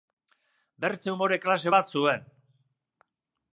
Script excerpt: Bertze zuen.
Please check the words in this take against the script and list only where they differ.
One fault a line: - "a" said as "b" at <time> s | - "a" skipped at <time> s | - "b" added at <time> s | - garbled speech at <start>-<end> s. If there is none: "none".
- "umore klase bat" added at 1.1 s